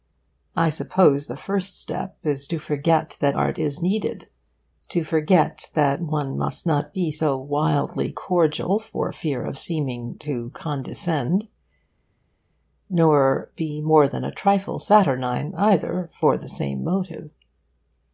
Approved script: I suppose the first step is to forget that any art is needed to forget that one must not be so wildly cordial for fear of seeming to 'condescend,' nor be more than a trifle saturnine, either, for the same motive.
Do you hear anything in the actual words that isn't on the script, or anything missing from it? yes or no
yes